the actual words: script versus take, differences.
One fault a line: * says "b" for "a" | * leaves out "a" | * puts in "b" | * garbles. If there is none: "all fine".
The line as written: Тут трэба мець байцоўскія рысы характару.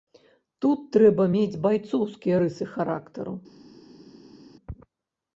all fine